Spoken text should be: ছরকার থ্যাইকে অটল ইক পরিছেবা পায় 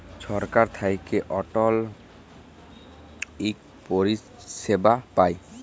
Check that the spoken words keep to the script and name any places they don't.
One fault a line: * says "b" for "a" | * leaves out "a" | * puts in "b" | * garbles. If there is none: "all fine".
all fine